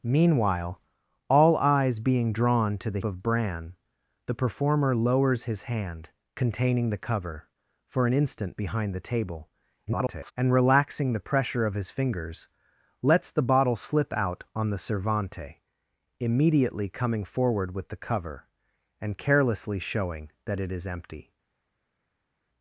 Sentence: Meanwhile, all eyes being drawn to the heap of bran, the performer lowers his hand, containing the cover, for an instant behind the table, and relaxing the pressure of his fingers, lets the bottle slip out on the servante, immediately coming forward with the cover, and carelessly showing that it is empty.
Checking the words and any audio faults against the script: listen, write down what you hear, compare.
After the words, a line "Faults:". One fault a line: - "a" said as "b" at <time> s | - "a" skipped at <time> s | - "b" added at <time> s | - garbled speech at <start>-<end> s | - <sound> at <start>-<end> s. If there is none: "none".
Meanwhile, all eyes being drawn to the of bran, the performer lowers his hand, containing the cover, for an instant behind the table, [garbled] and relaxing the pressure of his fingers, lets the bottle slip out on the servante, immediately coming forward with the cover, and carelessly showing that it is empty.
Faults:
- "heap" skipped at 3.0 s
- garbled speech at 9.9-10.3 s